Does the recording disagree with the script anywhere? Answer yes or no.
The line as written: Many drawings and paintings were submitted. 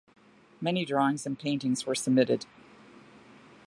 no